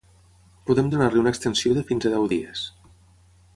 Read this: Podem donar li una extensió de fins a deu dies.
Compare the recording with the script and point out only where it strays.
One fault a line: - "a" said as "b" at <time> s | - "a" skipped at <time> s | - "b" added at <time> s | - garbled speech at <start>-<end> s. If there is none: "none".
none